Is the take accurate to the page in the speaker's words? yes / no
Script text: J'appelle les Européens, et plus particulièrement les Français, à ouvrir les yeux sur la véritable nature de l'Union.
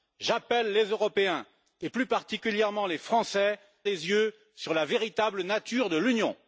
no